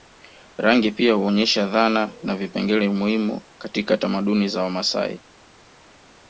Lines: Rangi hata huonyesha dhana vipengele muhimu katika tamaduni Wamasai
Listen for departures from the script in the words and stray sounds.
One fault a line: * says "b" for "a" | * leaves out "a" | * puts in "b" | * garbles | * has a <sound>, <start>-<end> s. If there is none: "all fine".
* says "pia" for "hata"
* puts in "na"
* puts in "za"